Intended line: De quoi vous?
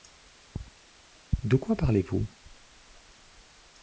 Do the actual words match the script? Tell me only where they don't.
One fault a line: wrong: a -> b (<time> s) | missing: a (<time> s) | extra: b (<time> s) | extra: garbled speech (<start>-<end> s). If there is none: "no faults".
extra: parlez (1.7 s)